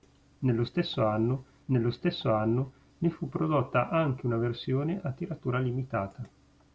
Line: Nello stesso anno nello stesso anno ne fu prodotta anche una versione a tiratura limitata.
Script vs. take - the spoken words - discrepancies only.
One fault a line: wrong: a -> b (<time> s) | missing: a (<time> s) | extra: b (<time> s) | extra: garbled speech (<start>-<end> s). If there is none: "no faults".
no faults